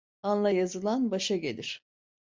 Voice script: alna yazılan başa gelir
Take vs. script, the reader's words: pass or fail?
pass